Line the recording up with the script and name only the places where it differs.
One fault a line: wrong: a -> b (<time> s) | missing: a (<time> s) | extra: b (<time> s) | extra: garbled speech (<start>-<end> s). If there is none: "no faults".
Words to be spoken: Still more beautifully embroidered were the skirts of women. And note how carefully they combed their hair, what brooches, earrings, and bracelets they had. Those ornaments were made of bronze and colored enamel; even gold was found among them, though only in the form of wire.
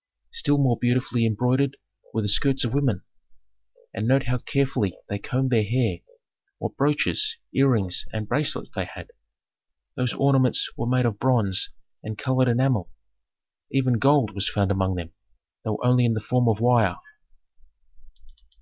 no faults